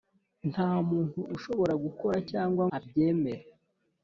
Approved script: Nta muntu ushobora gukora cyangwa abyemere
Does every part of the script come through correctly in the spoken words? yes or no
yes